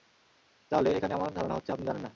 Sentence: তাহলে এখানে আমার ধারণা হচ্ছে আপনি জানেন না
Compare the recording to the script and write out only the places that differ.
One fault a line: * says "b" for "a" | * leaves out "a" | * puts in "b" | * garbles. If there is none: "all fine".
all fine